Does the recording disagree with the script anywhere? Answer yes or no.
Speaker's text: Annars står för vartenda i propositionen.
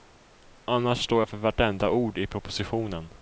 yes